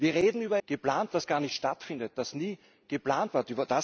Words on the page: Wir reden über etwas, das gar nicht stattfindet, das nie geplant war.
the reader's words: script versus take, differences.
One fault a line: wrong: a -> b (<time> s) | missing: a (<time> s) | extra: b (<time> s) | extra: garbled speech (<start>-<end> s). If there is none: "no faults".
wrong: etwas -> geplant (0.6 s)